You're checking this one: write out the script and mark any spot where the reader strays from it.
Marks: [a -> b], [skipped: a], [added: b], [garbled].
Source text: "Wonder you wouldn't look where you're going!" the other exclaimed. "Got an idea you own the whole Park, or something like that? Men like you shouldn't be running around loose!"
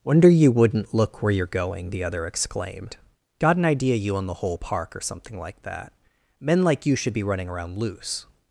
"Wonder you wouldn't look where you're going!" the other exclaimed. "Got an idea you own the whole Park, or something like that? Men like you [shouldn't -> should] be running around loose!"